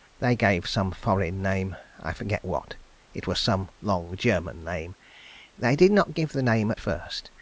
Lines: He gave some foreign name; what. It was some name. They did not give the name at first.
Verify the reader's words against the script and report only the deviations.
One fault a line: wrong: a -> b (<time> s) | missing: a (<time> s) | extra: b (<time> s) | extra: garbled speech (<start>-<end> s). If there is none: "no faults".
wrong: He -> They (0.2 s)
extra: I forget (2.0 s)
extra: long German (3.8 s)